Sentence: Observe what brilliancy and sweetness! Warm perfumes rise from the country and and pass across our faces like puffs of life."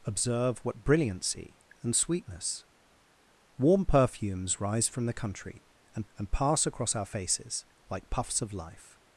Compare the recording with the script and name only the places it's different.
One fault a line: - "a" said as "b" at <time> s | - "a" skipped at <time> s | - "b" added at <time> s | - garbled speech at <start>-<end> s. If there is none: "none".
none